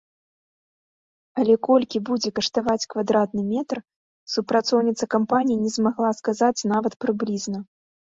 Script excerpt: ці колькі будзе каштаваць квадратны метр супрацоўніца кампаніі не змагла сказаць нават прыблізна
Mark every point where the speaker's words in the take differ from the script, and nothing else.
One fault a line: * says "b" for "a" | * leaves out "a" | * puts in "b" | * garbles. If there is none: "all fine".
* says "але" for "ці"